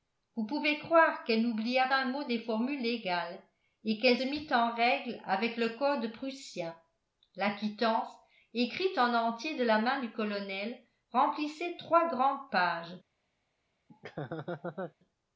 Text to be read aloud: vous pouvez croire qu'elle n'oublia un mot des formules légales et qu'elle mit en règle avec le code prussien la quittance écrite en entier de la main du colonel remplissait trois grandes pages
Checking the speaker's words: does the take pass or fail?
pass